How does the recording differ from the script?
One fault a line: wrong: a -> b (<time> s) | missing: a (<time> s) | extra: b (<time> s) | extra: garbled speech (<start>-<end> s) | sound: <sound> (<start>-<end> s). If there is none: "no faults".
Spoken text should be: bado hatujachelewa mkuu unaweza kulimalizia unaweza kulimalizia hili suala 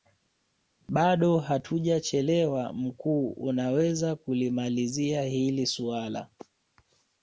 missing: unaweza kulimalizia (5.2 s)